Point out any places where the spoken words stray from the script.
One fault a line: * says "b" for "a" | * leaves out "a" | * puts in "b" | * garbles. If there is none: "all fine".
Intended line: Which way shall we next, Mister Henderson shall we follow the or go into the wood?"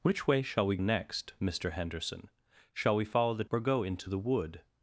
all fine